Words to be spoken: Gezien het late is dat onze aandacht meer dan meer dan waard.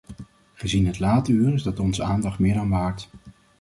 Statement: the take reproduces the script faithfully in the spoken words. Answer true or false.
false